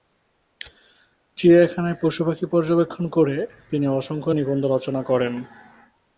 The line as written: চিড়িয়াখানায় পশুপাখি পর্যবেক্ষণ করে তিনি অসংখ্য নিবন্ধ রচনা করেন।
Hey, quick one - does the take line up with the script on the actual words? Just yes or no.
yes